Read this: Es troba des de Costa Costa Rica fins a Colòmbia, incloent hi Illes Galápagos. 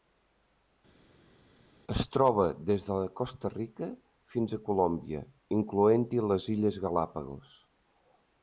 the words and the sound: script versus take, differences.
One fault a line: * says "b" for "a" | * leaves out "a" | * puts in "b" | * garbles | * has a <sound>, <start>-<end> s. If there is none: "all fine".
* leaves out "Costa"
* puts in "les"